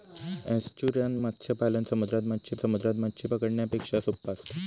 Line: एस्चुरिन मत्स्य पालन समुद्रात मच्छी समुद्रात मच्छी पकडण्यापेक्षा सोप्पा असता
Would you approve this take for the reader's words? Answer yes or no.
yes